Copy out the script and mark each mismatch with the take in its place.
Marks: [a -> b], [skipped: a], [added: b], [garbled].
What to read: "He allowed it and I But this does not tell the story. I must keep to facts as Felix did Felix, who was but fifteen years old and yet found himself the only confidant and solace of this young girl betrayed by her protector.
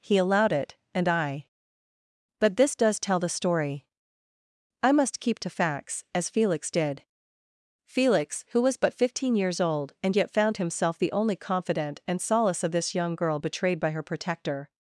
"He allowed it and I But this does [skipped: not] tell the story. I must keep to facts as Felix did Felix, who was but fifteen years old and yet found himself the only confidant and solace of this young girl betrayed by her protector.